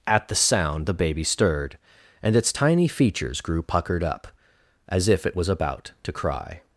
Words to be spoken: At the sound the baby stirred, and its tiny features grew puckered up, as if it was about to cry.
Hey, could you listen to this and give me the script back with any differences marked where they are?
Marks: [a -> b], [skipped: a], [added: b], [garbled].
At the sound the baby stirred, and its tiny features grew puckered up, as if it was about to cry.